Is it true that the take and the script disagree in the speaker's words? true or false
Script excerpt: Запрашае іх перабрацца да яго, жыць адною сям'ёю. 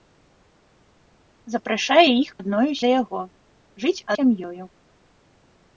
true